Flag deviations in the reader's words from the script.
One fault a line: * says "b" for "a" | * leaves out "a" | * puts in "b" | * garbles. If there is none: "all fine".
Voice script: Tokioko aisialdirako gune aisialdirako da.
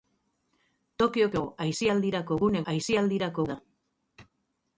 all fine